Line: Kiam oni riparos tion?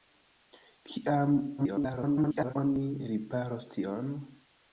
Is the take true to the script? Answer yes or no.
no